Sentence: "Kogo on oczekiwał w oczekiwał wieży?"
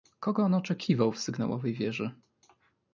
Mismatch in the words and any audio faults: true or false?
true